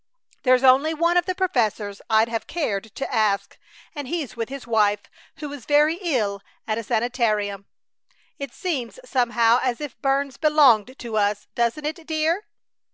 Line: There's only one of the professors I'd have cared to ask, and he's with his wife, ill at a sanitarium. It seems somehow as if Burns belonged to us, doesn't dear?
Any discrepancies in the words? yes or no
yes